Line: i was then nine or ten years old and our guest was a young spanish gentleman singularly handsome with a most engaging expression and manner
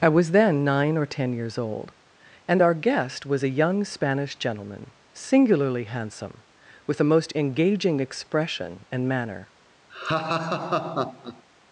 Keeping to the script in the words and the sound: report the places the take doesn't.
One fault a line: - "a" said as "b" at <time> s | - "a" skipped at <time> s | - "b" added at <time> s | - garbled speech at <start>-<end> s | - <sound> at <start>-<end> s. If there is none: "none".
- laugh at 9.9-11.4 s